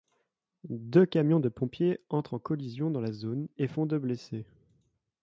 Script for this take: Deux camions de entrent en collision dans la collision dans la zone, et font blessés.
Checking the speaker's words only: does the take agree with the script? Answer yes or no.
no